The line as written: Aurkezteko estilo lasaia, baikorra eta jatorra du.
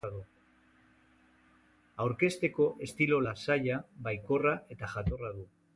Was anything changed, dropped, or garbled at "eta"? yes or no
no